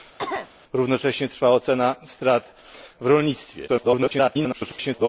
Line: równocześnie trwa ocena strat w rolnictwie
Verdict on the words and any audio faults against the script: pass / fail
fail